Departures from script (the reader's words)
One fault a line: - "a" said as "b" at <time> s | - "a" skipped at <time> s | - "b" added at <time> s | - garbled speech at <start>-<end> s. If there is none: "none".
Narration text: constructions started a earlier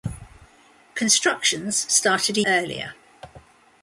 none